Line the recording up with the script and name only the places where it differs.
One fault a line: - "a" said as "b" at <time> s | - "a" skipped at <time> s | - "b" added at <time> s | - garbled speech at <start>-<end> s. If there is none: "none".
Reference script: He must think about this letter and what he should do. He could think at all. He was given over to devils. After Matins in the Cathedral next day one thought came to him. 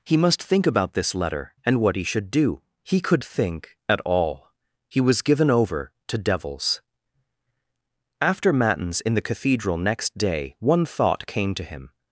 none